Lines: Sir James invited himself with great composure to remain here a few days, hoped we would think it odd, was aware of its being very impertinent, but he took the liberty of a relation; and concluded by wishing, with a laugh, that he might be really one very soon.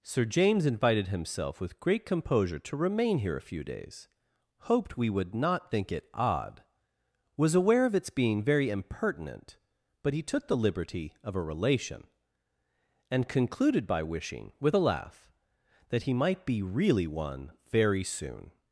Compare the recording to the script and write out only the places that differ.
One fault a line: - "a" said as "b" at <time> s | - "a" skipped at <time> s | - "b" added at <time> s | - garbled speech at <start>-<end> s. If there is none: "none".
- "not" added at 5.3 s